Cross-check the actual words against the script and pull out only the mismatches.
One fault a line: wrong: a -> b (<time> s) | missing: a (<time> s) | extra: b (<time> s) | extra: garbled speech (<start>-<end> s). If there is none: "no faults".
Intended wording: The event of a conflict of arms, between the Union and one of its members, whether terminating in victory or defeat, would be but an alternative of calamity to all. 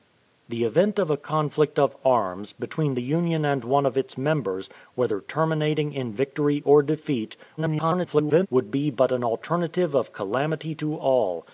extra: garbled speech (7.6-8.5 s)